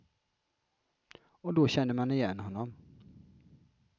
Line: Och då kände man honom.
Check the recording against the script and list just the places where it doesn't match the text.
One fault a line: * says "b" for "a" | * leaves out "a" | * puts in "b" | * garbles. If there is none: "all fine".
* puts in "igen"